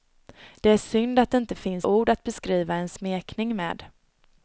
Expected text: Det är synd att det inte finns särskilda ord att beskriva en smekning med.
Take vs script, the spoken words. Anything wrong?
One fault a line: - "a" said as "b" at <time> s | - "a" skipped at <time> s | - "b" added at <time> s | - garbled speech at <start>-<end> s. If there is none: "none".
- "särskilda" skipped at 1.9 s